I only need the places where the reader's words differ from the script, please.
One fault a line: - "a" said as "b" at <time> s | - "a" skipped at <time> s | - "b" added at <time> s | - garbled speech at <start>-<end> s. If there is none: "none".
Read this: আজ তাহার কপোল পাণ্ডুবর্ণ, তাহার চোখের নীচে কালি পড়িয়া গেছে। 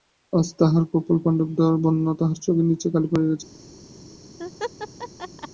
none